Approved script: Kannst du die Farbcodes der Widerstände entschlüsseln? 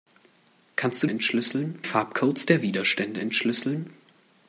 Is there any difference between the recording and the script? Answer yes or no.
yes